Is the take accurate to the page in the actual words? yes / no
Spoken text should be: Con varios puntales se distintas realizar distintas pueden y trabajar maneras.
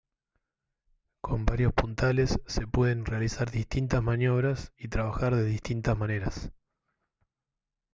no